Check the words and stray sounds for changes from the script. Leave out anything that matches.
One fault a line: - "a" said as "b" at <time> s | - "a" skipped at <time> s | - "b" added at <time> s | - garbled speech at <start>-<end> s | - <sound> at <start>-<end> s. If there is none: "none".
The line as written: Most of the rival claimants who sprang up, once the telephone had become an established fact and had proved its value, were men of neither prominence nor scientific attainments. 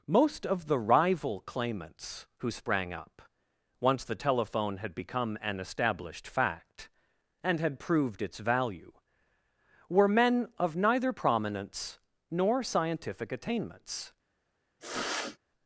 - sniff at 14.8-15.4 s